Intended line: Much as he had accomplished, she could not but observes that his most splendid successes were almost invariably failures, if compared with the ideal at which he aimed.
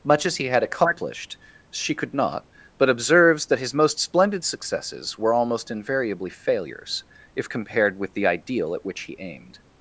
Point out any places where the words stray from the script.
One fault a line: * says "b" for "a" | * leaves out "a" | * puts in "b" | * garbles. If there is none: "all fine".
all fine